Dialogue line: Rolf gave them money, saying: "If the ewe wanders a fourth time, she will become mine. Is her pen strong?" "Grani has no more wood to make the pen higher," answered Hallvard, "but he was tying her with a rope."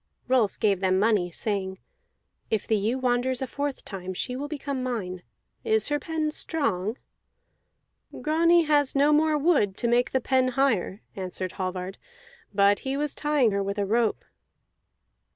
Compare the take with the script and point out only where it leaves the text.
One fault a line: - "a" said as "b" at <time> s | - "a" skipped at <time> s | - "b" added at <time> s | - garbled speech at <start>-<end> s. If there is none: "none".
none